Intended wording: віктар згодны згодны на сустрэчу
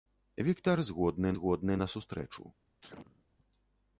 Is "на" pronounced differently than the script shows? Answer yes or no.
no